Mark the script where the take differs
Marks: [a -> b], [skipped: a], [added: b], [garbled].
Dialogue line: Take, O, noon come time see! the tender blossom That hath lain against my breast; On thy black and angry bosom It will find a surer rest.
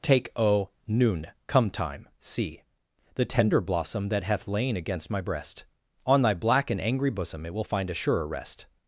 Take, O, noon come time see! the tender blossom That hath lain against my breast; On thy black and angry bosom It will find a surer rest.